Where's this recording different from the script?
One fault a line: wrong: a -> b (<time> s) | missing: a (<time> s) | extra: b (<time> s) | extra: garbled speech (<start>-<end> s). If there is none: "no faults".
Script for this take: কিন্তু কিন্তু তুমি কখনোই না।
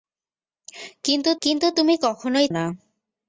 no faults